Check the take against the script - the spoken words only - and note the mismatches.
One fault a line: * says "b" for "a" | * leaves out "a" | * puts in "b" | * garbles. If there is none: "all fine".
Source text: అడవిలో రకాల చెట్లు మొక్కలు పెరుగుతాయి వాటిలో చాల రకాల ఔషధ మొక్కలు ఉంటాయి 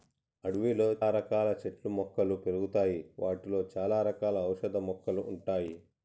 all fine